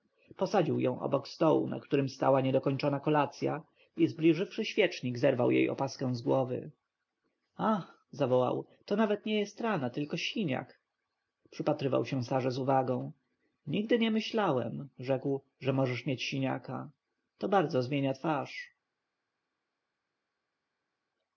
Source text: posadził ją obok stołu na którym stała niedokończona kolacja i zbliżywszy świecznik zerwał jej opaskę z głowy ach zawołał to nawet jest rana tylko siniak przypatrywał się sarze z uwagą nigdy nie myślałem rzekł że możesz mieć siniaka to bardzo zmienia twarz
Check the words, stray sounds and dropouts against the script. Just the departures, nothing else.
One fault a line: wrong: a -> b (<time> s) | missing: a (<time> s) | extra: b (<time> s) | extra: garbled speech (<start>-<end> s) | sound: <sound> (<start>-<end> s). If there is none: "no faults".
extra: nie (9.2 s)